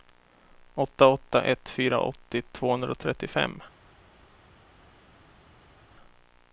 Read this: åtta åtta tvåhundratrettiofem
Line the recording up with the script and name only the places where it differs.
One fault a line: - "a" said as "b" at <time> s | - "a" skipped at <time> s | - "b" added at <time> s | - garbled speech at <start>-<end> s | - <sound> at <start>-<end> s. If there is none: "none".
- "ett fyra åttio" added at 1.4 s